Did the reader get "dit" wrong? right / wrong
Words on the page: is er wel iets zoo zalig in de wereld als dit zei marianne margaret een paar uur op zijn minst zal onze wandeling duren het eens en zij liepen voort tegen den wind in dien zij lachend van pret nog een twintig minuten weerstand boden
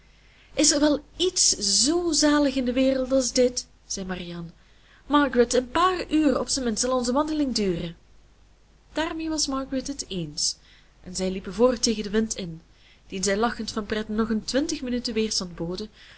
right